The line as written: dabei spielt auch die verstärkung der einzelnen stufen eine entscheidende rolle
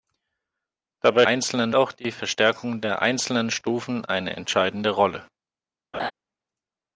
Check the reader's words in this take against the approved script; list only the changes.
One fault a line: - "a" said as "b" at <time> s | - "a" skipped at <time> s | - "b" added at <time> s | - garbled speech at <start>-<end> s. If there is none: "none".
- "spielt" said as "einzelnen" at 1.3 s